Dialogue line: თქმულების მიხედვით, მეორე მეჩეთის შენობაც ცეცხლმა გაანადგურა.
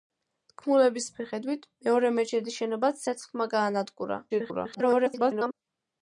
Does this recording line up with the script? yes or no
no